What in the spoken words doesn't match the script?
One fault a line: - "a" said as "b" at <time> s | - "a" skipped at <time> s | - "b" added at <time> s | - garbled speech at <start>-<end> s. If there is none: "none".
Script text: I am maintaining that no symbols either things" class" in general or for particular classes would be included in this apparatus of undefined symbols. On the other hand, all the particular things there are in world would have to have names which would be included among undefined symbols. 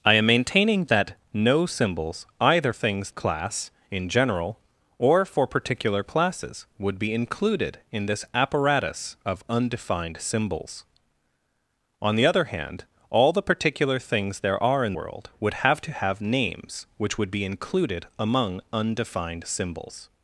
none